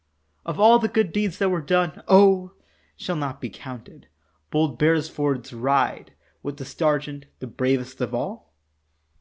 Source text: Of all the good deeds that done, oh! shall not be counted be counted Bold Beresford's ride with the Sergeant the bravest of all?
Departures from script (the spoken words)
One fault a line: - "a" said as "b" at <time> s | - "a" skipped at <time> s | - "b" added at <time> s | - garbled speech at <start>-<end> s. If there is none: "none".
- "were" added at 1.5 s
- "be counted" skipped at 4.1 s